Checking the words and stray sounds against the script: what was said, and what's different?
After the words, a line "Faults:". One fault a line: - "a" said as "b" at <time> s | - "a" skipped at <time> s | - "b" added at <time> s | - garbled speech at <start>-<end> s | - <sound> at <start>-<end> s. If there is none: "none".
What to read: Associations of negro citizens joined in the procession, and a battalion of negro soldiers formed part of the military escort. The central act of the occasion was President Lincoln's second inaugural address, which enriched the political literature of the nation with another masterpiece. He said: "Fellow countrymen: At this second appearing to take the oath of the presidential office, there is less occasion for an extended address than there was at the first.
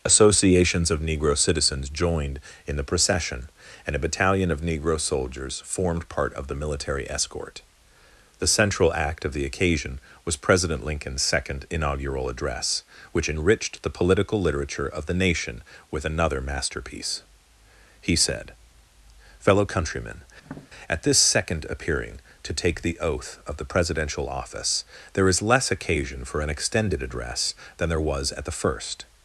Associations of negro citizens joined in the procession, and a battalion of negro soldiers formed part of the military escort. The central act of the occasion was President Lincoln's second inaugural address, which enriched the political literature of the nation with another masterpiece. He said: "Fellow countrymen: At this second appearing to take the oath of the presidential office, there is less occasion for an extended address than there was at the first.
Faults:
- tap at 20.4-20.7 s